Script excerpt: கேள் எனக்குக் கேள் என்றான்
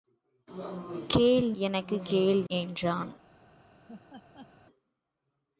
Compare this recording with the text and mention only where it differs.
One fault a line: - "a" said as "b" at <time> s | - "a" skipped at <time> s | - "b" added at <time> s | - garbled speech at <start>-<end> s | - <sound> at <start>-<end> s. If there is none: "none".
- laugh at 3.9-4.5 s